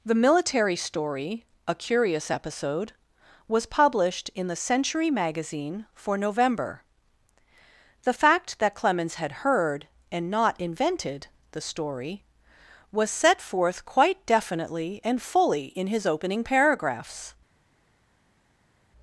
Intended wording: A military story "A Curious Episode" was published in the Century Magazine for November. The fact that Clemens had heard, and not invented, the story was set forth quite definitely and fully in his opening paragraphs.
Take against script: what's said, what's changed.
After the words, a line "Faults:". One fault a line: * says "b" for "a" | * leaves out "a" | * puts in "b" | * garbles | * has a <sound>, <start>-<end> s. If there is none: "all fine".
The military story "A Curious Episode" was published in the Century Magazine for November. The fact that Clemens had heard, and not invented, the story was set forth quite definitely and fully in his opening paragraphs.
Faults:
* says "The" for "A"